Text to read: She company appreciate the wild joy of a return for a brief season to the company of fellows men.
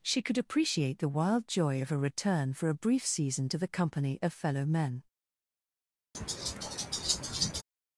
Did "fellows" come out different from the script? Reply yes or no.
yes